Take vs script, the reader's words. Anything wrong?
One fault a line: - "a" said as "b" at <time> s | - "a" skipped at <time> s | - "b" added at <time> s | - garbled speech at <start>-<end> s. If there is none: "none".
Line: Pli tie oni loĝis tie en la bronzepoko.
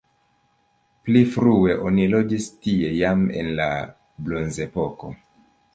- "tie" said as "frue" at 1.4 s
- "jam" added at 3.0 s